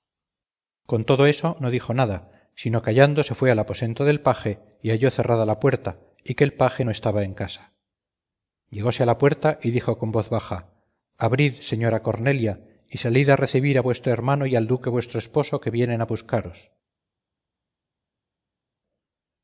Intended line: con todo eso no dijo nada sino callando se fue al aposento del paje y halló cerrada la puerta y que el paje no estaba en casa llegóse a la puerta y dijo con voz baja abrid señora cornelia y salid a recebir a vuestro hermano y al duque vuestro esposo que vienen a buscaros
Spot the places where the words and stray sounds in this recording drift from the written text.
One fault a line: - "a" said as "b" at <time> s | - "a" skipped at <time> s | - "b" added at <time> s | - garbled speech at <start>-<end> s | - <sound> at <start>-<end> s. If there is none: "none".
none